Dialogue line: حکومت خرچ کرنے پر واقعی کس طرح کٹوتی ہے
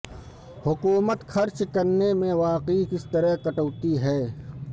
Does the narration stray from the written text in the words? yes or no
yes